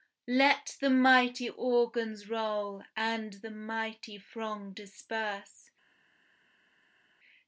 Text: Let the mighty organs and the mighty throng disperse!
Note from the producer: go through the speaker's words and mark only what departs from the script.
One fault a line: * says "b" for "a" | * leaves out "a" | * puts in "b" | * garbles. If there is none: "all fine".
* puts in "roll"